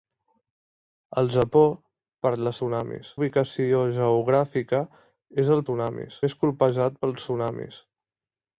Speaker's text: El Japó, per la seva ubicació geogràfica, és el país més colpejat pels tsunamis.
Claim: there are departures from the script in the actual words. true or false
true